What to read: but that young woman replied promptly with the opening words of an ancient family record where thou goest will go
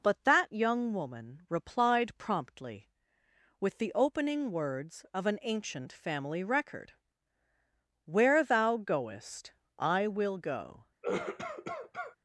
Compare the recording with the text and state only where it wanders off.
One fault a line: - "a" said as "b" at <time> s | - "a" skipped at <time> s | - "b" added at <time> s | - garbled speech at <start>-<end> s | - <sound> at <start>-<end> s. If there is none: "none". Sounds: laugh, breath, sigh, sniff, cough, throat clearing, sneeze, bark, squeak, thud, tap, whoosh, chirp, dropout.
- "i" added at 9.8 s
- cough at 11.0-12.2 s